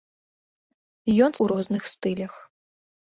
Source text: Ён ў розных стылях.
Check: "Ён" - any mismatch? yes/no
no